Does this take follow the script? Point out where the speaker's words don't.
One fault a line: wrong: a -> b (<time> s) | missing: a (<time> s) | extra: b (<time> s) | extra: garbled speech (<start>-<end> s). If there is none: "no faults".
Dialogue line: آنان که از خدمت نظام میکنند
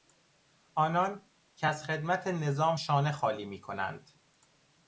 extra: شانه خالی (2.7 s)